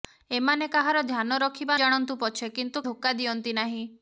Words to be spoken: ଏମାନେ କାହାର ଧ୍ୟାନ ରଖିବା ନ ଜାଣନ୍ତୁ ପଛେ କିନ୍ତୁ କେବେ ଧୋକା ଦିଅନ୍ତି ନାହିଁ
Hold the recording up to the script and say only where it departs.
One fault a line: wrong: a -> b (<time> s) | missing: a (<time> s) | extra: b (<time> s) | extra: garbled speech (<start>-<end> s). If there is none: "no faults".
missing: ନ (1.8 s)
missing: କେବେ (2.8 s)